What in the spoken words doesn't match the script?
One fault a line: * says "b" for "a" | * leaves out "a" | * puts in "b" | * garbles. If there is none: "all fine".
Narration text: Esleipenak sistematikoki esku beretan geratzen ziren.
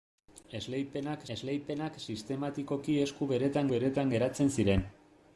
* puts in "esleipenak"
* puts in "beretan"